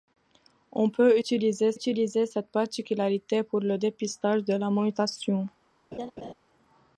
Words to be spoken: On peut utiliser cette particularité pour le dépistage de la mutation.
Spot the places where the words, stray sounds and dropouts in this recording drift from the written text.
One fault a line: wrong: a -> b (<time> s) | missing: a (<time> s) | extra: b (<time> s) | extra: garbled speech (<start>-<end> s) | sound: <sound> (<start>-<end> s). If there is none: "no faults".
extra: utiliser (1.7 s)
sound: laugh (5.9-6.3 s)